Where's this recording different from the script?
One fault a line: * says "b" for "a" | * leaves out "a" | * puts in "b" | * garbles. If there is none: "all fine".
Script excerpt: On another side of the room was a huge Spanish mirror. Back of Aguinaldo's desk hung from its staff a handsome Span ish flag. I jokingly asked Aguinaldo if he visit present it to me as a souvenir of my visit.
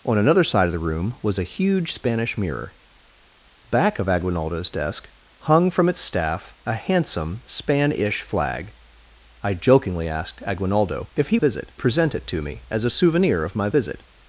all fine